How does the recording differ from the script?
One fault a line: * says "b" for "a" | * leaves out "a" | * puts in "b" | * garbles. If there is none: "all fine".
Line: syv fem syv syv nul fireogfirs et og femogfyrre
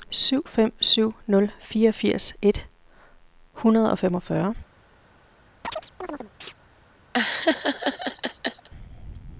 * leaves out "syv"
* puts in "hundrede"